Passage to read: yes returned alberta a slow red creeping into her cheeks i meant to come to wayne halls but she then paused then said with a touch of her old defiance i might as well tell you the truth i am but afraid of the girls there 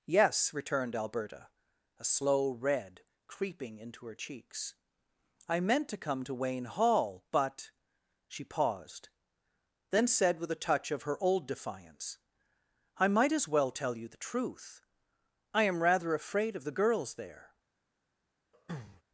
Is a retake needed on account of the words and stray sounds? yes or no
yes